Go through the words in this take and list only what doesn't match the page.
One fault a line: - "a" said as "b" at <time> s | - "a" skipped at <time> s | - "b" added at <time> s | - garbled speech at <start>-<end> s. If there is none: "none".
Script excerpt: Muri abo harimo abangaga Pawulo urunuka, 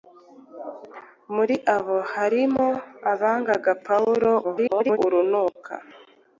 - garbled speech at 4.4-5.0 s